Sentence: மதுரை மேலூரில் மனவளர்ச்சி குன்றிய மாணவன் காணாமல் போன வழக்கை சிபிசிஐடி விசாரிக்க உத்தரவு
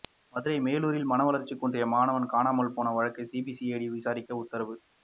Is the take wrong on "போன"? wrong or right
right